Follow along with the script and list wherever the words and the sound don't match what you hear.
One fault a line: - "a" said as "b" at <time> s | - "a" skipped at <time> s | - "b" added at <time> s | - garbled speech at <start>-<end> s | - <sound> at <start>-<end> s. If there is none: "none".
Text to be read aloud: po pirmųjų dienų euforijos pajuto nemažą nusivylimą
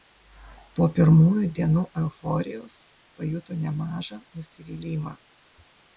none